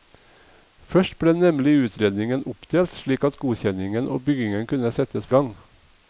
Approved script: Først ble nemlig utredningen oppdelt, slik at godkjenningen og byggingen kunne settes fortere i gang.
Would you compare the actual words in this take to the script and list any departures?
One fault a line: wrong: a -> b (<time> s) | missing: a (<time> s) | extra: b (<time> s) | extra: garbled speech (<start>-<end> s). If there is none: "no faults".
missing: fortere (5.3 s)